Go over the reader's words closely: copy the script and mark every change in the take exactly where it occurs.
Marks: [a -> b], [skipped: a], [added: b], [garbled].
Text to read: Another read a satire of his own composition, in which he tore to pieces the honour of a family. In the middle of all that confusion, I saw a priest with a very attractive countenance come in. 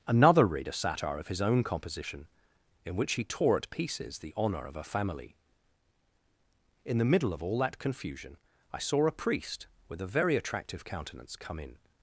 Another read a satire of his own composition, in which he tore [to -> at] pieces the honour of a family. In the middle of all that confusion, I saw a priest with a very attractive countenance come in.